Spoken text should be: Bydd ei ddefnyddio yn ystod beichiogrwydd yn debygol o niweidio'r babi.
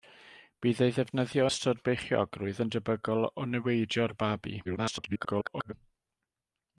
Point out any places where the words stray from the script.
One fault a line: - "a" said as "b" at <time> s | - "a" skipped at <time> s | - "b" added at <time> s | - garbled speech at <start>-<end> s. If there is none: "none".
- "yn" skipped at 1.4 s
- garbled speech at 4.6-5.7 s